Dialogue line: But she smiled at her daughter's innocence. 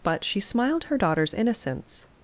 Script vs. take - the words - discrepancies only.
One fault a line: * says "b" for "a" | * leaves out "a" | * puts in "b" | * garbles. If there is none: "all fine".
* leaves out "at"